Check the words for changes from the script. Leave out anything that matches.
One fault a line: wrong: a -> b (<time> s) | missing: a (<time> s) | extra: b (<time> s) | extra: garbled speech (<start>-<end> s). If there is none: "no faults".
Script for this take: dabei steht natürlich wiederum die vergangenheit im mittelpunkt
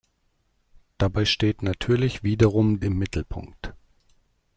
missing: die vergangenheit (2.8 s)